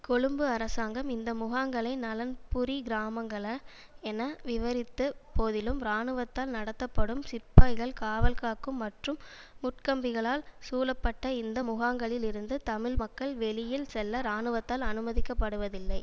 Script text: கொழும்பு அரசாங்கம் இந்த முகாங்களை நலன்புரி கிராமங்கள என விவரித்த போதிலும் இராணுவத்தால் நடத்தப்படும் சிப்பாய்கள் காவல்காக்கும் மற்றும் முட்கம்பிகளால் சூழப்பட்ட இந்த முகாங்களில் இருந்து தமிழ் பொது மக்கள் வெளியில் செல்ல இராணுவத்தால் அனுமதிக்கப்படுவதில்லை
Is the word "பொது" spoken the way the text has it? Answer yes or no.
no